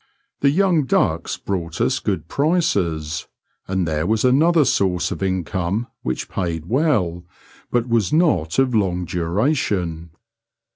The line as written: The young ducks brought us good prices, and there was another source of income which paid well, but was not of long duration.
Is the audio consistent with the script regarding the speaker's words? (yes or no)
yes